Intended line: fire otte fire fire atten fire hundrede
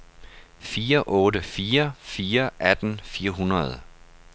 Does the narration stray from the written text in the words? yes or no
no